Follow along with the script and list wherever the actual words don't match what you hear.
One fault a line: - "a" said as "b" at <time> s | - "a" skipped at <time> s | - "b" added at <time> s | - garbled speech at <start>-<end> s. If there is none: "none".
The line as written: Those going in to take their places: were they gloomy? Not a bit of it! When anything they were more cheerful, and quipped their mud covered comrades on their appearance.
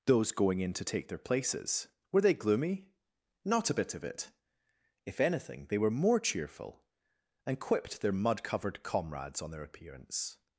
- "When" said as "If" at 5.1 s